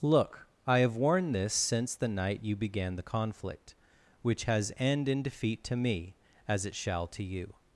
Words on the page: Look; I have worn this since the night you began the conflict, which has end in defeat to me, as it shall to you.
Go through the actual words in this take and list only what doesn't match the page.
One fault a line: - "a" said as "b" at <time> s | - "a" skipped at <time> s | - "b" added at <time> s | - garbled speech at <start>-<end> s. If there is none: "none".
none